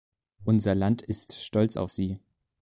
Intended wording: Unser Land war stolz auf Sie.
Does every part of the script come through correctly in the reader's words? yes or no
no